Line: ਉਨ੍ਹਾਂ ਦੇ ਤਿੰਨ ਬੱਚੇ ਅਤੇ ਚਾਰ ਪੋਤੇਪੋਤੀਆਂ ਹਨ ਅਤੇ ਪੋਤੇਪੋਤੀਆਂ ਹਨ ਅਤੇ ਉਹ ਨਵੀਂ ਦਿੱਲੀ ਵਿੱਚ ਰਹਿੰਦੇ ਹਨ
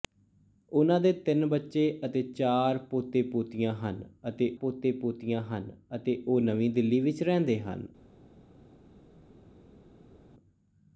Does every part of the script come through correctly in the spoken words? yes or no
yes